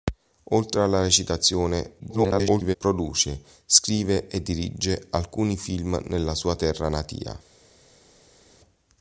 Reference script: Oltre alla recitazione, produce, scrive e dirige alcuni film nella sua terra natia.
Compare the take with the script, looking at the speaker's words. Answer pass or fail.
fail